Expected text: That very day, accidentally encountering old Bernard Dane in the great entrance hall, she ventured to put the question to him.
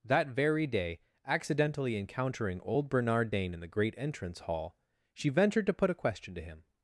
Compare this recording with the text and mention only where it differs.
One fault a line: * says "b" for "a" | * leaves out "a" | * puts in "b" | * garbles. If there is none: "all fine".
* says "a" for "the"